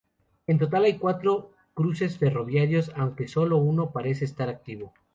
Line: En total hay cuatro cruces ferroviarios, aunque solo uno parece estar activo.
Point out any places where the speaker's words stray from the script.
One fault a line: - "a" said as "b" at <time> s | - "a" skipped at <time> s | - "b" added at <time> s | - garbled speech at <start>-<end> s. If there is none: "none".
none